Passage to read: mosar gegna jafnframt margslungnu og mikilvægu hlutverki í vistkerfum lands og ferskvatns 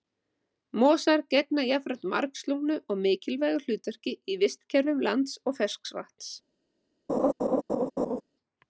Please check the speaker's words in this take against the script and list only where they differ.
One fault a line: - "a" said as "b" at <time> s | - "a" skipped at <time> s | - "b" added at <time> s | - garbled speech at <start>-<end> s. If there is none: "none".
none